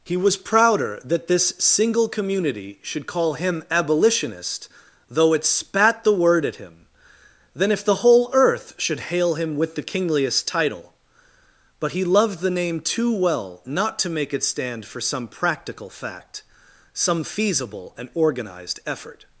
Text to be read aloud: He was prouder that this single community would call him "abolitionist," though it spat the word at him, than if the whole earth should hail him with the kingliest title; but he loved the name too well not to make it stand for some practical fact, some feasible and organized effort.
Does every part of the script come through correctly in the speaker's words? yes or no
no